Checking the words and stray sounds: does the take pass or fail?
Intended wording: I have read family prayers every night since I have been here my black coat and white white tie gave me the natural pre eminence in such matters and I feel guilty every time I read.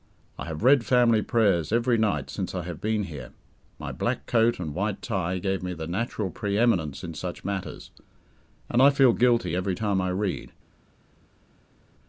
fail